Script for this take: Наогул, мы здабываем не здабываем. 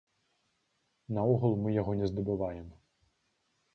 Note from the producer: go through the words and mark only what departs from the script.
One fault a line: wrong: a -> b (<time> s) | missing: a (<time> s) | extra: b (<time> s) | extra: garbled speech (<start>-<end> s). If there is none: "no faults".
wrong: здабываем -> яго (1.7 s)